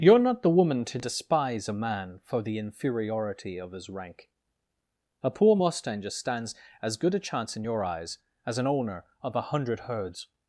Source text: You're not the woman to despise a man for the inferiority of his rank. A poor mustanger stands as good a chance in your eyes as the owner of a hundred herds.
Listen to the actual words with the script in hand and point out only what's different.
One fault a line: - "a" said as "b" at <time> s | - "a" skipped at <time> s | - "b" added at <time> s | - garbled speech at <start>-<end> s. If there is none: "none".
- "the" said as "an" at 8.6 s